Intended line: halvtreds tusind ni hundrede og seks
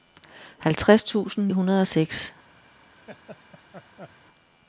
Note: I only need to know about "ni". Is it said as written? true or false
false